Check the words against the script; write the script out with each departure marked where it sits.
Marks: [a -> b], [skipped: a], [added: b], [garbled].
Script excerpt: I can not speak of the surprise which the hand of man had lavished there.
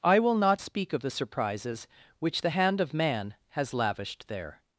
I [can -> will] not speak of the [surprise -> surprises] which the hand of man [had -> has] lavished there.